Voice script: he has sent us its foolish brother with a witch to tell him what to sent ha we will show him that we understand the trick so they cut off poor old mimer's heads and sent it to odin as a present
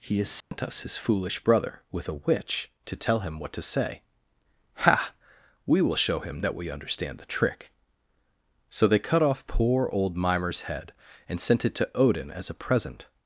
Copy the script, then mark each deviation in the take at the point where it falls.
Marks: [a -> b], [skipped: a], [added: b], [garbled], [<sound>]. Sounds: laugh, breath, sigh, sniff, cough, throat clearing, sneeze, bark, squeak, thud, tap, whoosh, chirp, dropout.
he has sent [dropout] us [its -> his] foolish brother with a witch to tell him what to [sent -> say] ha we will show him that we understand the trick so they cut off poor old mimer's [heads -> head] and sent it to odin as a present